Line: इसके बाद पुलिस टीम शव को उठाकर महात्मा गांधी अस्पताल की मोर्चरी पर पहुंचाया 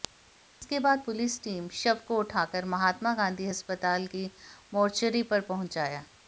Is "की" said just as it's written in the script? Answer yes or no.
yes